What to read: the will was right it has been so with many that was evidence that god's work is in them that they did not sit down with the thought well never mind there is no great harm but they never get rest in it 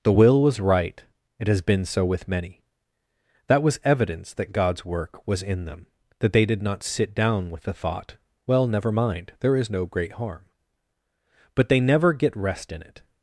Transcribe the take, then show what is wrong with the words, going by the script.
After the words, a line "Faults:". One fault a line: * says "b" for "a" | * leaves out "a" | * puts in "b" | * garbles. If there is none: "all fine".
the will was right it has been so with many that was evidence that god's work was in them that they did not sit down with the thought well never mind there is no great harm but they never get rest in it
Faults:
* says "was" for "is"